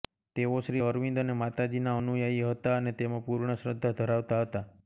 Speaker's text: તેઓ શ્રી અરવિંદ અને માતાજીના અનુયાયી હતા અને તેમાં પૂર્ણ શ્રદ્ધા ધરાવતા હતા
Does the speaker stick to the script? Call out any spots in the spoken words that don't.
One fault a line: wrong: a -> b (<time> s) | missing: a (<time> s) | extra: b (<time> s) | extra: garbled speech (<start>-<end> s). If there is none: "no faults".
no faults